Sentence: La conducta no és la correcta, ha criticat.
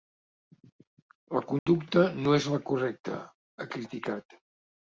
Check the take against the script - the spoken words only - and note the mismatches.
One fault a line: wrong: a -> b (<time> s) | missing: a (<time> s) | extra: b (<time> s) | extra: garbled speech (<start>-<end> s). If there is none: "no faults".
no faults